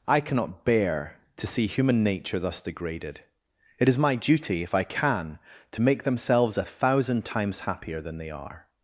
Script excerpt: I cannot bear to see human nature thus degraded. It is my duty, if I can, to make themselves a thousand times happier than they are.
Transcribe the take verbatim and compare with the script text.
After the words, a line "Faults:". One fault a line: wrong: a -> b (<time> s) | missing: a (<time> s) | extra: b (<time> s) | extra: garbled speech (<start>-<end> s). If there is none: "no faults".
I cannot bear to see human nature thus degraded. It is my duty, if I can, to make themselves a thousand times happier than they are.
Faults:
no faults